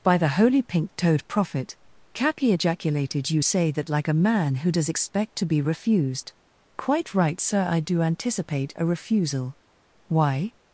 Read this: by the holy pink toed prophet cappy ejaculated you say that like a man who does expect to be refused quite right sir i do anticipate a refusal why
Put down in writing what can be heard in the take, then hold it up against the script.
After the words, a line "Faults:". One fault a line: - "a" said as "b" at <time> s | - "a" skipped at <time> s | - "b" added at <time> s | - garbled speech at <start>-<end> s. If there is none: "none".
by the holy pink toed prophet cappy ejaculated you say that like a man who does expect to be refused quite right sir i do anticipate a refusal why
Faults:
none